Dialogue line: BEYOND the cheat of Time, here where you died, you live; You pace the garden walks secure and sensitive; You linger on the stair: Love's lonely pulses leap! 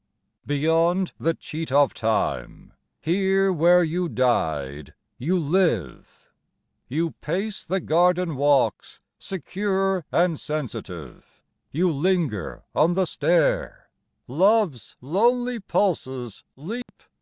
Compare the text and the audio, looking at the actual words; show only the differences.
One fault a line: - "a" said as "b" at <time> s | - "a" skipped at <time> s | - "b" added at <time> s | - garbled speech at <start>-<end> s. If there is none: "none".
none